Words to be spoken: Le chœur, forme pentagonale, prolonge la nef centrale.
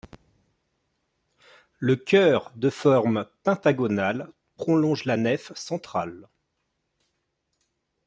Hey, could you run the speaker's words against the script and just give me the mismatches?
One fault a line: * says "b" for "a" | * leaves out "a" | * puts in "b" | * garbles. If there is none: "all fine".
* puts in "de"